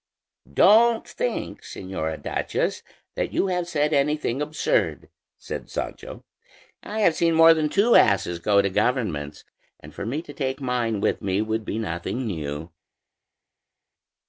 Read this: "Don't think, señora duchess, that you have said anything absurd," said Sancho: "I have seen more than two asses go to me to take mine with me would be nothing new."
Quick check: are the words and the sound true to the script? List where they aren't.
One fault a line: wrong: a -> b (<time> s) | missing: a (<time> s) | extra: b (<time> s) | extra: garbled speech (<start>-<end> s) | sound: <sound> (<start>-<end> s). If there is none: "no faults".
extra: governments and for (8.7 s)